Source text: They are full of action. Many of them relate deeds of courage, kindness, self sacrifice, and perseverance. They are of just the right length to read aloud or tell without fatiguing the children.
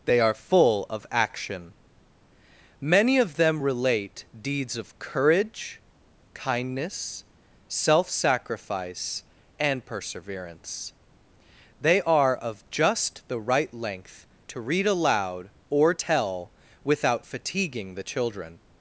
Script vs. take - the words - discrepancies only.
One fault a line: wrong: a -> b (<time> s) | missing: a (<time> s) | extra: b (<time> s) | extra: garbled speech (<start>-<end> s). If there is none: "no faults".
no faults